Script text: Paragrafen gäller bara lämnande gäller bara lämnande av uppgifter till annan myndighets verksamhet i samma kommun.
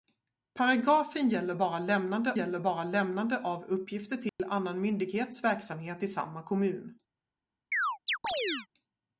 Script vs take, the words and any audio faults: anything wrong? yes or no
yes